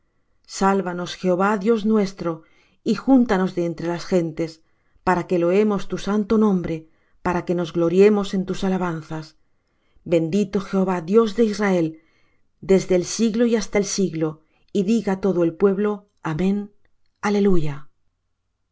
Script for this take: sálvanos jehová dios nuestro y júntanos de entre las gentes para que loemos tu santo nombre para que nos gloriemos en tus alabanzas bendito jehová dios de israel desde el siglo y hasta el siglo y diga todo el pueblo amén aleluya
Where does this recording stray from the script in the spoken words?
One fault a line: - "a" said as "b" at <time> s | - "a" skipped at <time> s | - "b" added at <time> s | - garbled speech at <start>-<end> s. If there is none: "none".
none